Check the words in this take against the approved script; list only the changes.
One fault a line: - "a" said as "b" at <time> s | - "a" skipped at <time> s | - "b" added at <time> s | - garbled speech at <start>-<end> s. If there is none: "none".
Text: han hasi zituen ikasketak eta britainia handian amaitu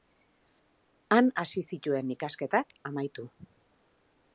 - "eta britainia handian" skipped at 2.7 s